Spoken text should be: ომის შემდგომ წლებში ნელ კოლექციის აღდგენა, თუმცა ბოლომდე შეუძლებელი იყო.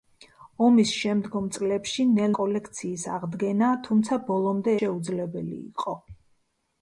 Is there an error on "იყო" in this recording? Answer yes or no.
no